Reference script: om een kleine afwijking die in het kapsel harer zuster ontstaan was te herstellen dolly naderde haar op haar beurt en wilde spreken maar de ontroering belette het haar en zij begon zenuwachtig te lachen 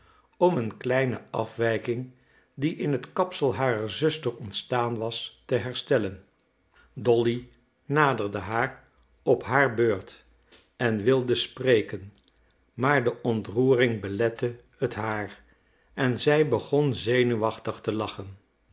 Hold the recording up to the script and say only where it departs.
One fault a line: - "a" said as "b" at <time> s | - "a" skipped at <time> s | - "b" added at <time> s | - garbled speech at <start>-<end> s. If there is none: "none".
none